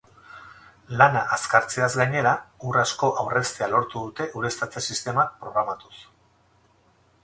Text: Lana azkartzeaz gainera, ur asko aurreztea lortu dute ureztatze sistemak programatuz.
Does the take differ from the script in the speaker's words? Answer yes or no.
no